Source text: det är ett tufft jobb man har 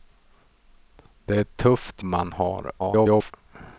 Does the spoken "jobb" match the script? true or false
false